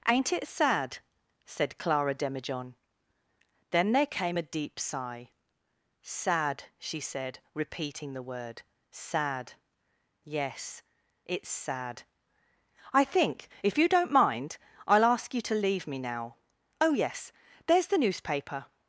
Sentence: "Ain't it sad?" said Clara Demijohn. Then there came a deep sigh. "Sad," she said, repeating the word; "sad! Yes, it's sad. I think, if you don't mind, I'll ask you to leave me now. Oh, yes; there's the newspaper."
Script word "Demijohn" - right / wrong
right